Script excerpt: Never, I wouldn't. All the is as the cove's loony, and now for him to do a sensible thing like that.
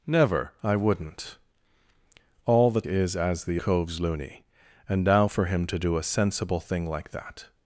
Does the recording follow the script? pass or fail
pass